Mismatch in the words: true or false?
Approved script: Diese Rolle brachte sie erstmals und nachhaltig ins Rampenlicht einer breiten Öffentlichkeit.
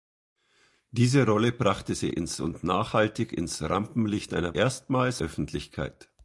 true